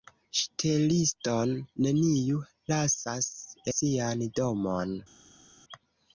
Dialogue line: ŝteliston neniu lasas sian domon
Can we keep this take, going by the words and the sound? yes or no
yes